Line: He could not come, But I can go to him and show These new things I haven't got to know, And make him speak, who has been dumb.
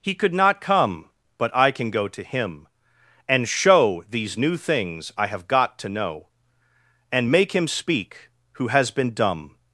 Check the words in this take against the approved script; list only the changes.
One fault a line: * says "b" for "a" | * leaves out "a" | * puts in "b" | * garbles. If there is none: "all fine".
* says "have" for "haven't"